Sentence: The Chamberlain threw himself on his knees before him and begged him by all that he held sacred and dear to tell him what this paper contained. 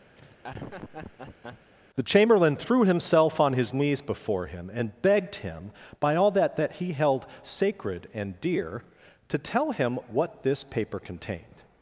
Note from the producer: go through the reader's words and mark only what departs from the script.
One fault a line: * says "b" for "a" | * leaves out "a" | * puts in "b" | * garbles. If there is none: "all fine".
* puts in "that"